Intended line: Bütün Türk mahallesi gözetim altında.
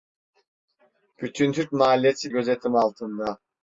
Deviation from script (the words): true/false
false